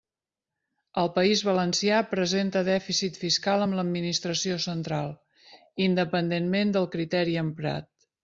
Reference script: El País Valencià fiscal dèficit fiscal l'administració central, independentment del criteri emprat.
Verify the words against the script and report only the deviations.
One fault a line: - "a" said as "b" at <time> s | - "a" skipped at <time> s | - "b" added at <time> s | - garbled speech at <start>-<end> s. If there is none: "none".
- "fiscal" said as "presenta" at 2.1 s
- "amb" added at 3.7 s